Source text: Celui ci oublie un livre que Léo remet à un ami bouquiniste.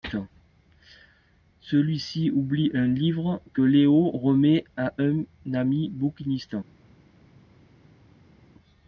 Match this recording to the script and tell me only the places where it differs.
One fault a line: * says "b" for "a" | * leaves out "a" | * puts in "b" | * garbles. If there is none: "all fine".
all fine